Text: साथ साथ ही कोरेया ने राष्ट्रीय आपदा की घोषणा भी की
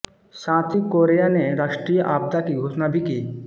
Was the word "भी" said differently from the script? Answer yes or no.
no